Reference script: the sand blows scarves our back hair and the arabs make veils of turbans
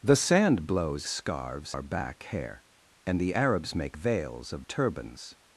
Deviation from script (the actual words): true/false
false